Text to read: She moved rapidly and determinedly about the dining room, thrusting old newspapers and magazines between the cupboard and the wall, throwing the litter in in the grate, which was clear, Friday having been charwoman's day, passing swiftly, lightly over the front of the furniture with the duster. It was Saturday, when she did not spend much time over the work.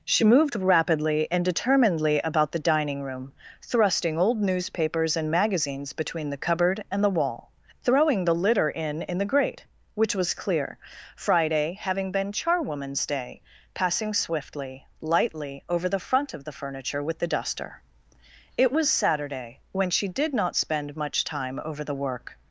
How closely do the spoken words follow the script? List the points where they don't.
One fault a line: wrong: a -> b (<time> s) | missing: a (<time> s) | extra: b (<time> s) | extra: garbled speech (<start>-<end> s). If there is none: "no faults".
no faults